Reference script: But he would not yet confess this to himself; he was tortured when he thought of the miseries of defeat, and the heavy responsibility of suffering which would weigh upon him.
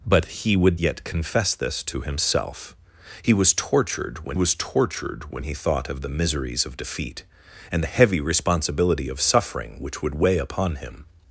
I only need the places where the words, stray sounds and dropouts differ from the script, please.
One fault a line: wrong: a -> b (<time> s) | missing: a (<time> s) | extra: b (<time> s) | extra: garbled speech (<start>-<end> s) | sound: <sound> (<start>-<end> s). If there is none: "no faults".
missing: not (0.8 s)
extra: was tortured when (4.3 s)